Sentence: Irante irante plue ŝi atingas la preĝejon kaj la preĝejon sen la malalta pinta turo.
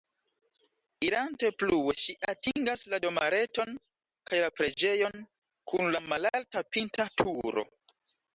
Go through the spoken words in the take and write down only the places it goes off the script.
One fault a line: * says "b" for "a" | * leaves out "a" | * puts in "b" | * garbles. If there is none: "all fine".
* leaves out "irante"
* says "domareton" for "preĝejon"
* says "kun" for "sen"